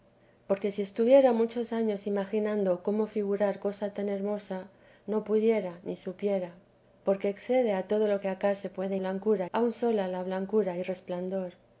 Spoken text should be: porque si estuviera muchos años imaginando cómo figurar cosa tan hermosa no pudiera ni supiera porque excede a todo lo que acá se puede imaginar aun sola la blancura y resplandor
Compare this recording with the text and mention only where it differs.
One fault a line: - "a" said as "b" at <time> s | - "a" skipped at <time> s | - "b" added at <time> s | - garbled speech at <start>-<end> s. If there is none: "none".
- "imaginar" said as "blancura" at 9.0 s